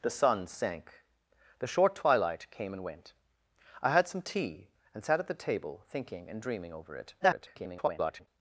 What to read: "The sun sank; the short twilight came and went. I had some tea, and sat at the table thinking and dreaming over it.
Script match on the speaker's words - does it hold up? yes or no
no